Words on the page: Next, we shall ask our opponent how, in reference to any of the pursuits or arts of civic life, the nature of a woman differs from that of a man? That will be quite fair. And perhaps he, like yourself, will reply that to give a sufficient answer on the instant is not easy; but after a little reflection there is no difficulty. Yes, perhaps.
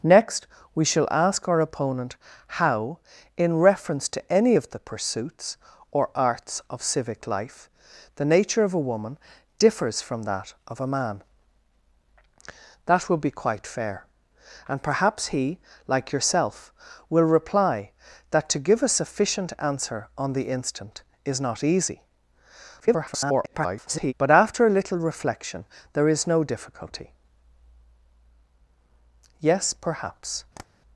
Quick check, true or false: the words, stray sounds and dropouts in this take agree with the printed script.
false